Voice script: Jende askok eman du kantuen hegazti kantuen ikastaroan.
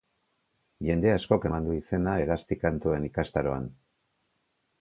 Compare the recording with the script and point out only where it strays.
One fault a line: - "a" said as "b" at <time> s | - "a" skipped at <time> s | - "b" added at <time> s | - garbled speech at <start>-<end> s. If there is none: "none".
- "kantuen" said as "izena" at 1.8 s